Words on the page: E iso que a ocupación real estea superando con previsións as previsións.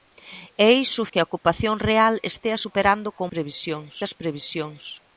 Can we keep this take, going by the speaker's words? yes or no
yes